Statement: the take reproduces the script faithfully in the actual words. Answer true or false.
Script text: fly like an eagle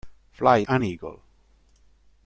false